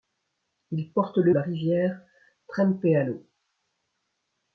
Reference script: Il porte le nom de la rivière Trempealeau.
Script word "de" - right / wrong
wrong